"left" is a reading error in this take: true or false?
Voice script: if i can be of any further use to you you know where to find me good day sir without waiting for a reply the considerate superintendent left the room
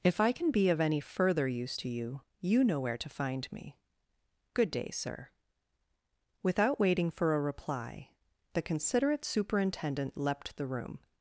true